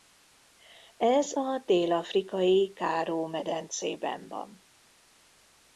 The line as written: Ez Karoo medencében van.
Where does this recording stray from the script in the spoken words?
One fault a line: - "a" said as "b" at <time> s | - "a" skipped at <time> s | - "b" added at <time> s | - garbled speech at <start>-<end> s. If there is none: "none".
- "a dél afrikai" added at 1.4 s